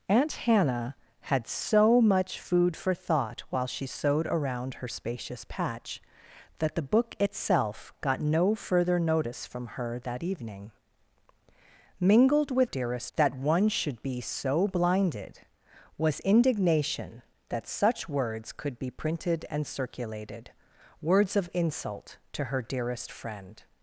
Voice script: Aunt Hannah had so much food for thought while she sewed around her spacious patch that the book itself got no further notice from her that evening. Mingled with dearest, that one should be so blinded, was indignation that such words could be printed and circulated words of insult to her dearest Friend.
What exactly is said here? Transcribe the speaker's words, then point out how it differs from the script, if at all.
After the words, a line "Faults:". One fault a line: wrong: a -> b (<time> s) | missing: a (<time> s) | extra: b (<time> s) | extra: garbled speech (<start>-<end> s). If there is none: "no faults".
Aunt Hannah had so much food for thought while she sewed around her spacious patch that the book itself got no further notice from her that evening. Mingled with dearest, that one should be so blinded, was indignation that such words could be printed and circulated words of insult to her dearest Friend.
Faults:
no faults